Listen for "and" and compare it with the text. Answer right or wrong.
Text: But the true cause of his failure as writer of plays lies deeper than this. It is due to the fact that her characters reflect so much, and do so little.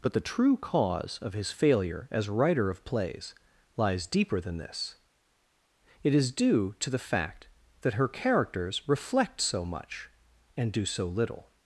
right